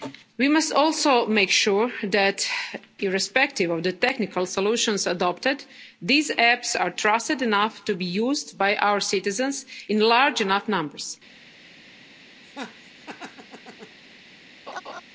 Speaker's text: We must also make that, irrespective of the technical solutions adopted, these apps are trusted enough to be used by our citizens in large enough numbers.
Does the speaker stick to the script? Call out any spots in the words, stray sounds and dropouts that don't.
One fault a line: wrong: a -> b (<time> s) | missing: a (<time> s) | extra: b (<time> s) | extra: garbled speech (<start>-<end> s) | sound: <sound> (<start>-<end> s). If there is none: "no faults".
extra: sure (1.5 s)
sound: laugh (12.4-14.0 s)
sound: laugh (14.7-15.0 s)